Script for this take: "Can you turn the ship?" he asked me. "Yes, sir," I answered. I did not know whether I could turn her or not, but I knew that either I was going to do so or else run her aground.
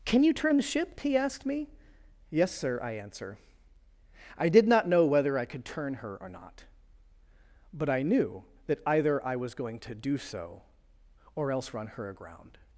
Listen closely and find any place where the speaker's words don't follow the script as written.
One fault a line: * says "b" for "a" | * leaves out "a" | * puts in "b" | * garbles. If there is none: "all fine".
* says "answer" for "answered"